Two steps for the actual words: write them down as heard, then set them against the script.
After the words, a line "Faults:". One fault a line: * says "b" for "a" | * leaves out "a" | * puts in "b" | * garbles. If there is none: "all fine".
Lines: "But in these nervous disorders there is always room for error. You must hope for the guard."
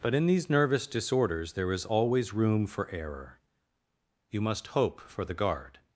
"But in these nervous disorders there is always room for error. You must hope for the guard."
Faults:
all fine